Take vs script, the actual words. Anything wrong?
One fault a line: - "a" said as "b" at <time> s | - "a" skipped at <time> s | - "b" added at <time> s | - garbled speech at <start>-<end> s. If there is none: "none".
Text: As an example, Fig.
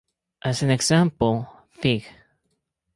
none